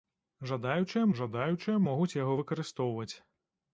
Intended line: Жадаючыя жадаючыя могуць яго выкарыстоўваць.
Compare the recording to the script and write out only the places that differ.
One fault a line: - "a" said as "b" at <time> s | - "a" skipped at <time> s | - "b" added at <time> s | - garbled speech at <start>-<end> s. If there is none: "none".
none